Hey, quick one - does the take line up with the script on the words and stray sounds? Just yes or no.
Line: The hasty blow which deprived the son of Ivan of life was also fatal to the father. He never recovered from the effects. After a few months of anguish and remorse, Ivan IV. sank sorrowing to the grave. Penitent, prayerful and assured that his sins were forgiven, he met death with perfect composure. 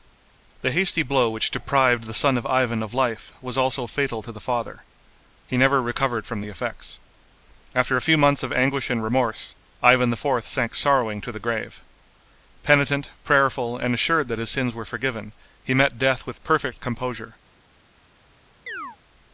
no